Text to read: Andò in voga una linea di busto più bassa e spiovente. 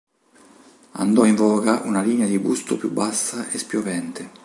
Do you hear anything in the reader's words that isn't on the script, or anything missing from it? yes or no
no